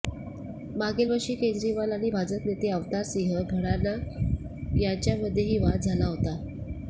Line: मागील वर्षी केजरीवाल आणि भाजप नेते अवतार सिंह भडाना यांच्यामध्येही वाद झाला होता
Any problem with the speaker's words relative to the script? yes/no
no